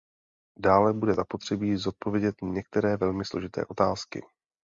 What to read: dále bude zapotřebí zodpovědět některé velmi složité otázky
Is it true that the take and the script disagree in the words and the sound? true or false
false